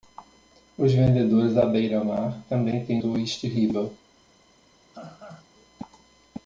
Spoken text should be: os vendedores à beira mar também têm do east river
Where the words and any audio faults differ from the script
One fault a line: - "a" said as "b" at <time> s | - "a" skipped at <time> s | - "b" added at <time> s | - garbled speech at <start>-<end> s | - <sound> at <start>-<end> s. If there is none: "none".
- laugh at 4.9-5.5 s